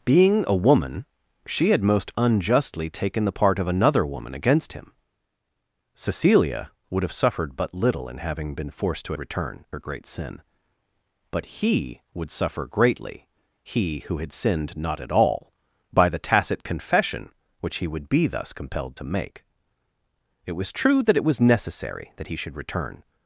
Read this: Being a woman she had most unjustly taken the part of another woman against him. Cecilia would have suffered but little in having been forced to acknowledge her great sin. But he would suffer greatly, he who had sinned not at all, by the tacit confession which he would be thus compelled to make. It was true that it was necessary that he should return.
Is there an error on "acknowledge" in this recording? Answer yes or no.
yes